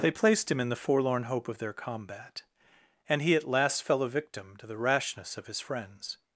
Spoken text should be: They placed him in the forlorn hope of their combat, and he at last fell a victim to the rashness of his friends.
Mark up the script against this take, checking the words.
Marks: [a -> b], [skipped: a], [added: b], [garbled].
They placed him in the forlorn hope of their combat, and he at last fell a victim to the rashness of his friends.